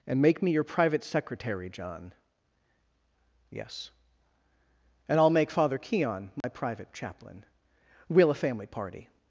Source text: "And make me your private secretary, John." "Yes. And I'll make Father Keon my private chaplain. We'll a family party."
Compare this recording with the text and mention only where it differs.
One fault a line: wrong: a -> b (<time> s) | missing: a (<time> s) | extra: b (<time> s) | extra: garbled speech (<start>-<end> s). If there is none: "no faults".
no faults